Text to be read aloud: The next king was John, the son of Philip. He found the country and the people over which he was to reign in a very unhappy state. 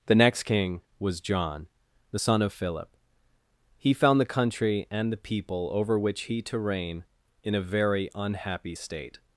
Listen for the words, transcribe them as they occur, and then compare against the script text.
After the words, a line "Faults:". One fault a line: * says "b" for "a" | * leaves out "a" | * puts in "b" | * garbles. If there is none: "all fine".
The next king was John, the son of Philip. He found the country and the people over which he to reign in a very unhappy state.
Faults:
* leaves out "was"